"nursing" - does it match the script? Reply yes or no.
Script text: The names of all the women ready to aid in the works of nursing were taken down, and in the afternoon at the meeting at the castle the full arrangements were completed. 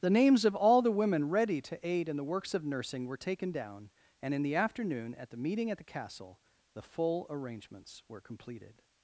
yes